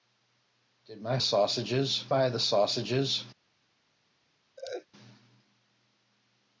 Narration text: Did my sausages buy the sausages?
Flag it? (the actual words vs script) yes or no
no